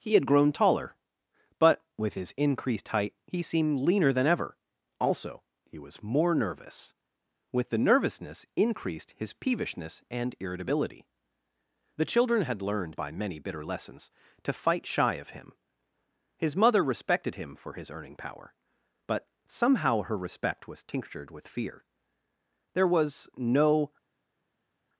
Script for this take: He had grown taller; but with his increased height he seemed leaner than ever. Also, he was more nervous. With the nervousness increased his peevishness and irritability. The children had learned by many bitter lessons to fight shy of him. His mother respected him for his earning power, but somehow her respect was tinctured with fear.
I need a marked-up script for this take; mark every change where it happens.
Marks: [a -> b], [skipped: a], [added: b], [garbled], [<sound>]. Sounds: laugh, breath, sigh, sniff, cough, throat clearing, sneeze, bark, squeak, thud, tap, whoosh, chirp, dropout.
He had grown taller; but with his increased height he seemed leaner than ever. Also, he was more nervous. With the nervousness increased his peevishness and irritability. The children had learned by many bitter lessons to fight shy of him. His mother respected him for his earning power, but somehow her respect was tinctured with fear. [added: There was no]